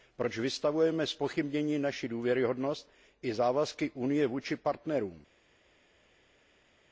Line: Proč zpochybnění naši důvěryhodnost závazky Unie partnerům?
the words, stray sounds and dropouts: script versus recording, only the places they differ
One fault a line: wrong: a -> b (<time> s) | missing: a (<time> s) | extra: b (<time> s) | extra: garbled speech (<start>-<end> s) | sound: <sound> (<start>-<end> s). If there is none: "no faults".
extra: vystavujeme (0.4 s)
extra: i (3.2 s)
extra: vůči (4.3 s)